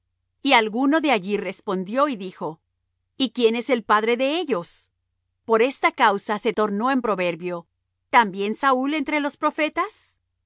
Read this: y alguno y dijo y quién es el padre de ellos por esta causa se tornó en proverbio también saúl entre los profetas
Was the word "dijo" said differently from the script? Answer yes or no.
no